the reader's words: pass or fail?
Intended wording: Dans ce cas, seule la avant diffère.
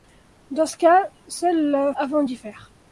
pass